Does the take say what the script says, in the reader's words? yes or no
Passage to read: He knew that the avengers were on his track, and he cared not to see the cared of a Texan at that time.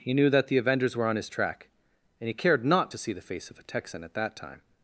no